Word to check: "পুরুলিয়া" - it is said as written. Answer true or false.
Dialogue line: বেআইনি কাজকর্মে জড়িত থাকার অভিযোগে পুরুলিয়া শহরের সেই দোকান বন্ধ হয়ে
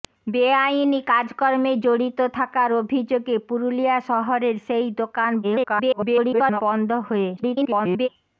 true